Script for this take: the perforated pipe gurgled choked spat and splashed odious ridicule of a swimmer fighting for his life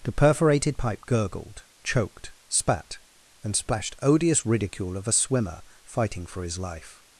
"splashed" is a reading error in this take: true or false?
false